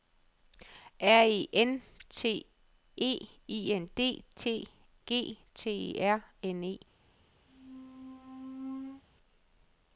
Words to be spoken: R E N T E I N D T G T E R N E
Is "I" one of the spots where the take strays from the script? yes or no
no